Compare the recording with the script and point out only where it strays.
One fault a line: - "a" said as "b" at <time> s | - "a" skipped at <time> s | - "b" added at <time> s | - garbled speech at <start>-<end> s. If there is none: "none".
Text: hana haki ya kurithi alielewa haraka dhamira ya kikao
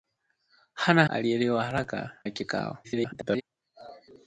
- "haki ya kurithi" skipped at 1.1 s
- "dhamira" skipped at 2.2 s
- garbled speech at 2.8-3.4 s